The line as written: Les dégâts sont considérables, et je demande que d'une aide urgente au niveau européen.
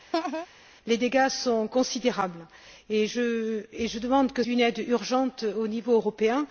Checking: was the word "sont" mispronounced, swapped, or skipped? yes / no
no